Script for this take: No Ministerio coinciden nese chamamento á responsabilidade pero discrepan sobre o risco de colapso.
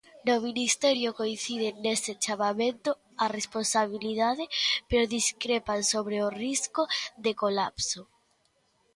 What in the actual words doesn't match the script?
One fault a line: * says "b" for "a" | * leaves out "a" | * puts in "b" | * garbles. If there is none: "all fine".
all fine